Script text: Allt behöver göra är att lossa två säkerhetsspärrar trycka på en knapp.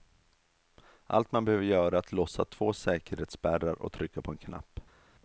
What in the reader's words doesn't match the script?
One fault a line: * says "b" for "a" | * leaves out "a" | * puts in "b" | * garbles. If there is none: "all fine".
* puts in "man"
* puts in "och"